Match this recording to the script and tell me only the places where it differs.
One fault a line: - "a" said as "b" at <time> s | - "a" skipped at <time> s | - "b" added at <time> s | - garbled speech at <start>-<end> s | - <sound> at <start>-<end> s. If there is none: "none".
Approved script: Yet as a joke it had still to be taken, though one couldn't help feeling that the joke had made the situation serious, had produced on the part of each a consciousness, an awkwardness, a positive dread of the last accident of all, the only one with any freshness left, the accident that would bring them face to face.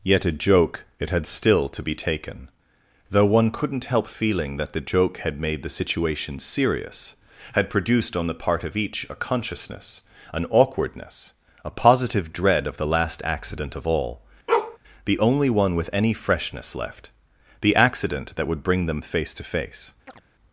- "as" skipped at 0.2 s
- bark at 14.5-14.8 s
- chirp at 20.1-20.2 s